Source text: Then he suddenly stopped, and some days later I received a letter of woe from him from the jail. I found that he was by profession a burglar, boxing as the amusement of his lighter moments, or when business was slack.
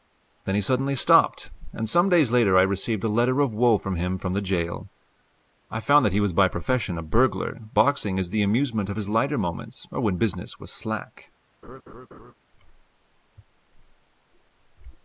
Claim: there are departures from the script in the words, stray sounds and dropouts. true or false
true